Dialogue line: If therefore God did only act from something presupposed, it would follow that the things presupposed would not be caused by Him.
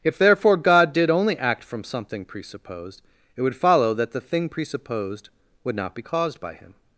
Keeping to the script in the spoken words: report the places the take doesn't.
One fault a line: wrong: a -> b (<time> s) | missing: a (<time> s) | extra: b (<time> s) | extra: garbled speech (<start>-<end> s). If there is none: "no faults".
wrong: things -> thing (4.2 s)